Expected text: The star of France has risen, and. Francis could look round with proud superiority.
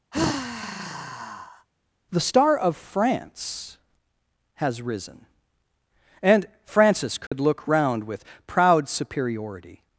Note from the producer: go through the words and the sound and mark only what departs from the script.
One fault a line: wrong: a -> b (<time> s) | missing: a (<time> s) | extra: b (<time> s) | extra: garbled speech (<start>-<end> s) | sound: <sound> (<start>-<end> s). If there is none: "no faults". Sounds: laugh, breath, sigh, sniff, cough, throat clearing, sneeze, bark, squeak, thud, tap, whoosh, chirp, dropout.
sound: sigh (0.1-1.7 s)
sound: dropout (7.3-7.3 s)